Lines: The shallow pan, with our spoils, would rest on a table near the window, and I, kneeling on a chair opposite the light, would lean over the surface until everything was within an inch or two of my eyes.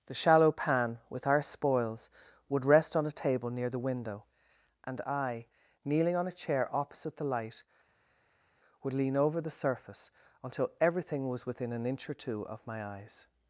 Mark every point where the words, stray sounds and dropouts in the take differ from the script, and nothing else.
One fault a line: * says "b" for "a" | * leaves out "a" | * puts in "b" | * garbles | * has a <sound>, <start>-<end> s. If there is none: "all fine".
all fine